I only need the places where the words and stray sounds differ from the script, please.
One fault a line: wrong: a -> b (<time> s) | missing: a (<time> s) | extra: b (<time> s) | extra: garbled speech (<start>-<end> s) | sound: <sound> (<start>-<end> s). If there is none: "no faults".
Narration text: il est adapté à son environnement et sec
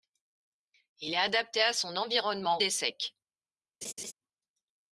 sound: laugh (3.8-4.1 s)